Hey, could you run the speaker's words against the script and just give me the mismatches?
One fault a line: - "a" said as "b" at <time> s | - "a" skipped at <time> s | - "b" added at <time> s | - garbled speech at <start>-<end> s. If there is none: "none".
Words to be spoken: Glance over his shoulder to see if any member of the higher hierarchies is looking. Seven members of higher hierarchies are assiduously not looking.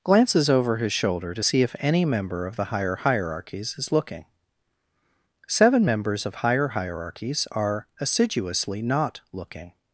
- "Glance" said as "Glances" at 0.0 s